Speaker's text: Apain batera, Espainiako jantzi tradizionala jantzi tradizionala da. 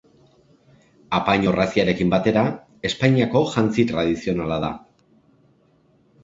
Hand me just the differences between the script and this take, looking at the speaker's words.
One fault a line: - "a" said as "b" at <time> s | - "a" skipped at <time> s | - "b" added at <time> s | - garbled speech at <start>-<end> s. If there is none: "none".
- "orraziarekin" added at 1.5 s
- "jantzi tradizionala" skipped at 4.6 s